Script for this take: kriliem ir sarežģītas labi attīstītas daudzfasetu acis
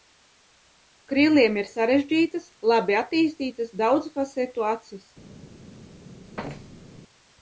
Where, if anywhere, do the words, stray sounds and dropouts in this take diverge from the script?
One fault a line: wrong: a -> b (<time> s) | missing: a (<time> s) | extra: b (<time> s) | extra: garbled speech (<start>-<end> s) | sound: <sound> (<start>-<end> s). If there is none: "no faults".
sound: thud (6.4-7.0 s)